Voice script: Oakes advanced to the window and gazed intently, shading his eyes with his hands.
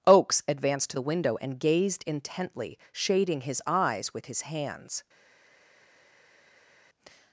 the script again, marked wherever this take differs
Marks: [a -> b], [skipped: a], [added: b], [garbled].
Oakes advanced to the window and gazed intently, shading his eyes with his hands.